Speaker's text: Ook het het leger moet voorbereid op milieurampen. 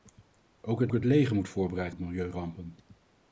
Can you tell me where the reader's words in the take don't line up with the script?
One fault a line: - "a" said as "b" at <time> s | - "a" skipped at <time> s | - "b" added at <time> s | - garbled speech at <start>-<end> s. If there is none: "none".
none